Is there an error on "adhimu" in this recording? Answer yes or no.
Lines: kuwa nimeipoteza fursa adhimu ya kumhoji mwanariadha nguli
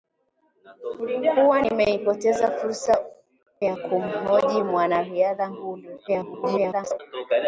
yes